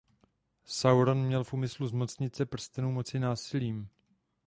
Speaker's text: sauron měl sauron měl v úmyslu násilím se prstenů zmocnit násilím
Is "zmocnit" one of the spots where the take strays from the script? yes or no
yes